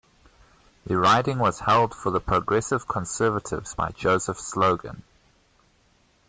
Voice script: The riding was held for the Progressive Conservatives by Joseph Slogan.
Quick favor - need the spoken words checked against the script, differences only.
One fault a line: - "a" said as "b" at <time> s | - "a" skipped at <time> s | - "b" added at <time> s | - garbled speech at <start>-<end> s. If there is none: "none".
none